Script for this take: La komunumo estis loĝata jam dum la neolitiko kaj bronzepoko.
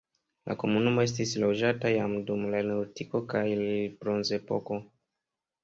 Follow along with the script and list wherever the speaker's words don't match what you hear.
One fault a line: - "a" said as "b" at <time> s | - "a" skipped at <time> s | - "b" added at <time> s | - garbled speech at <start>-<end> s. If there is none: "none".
none